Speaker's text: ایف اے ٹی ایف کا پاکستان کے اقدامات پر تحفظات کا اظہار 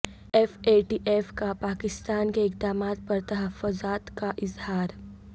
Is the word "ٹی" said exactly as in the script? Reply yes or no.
yes